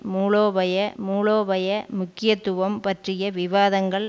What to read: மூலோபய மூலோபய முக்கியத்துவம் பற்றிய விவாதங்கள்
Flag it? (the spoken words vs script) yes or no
no